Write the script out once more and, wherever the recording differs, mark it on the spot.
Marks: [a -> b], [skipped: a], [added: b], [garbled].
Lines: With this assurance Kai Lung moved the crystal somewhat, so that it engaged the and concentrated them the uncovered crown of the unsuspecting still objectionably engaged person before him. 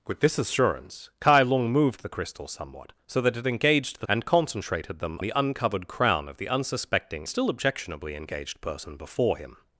With this assurance Kai Lung moved the crystal somewhat, so that it engaged the and concentrated them the uncovered crown of the unsuspecting still objectionably engaged person before him.